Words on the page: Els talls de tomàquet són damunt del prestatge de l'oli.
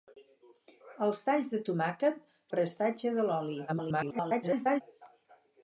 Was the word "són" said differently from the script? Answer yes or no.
yes